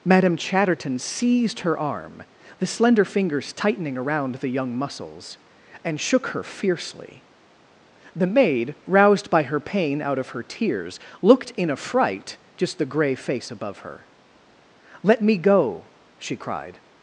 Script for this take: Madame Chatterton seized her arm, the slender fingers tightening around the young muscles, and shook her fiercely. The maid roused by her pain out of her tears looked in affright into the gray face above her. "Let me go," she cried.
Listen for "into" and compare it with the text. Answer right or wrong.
wrong